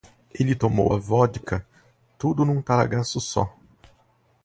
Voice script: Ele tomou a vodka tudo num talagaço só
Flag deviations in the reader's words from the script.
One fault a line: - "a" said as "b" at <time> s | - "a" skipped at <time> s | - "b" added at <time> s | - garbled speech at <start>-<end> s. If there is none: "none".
none